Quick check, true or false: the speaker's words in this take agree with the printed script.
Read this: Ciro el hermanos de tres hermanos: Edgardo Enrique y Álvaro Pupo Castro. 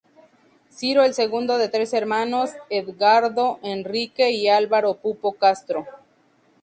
false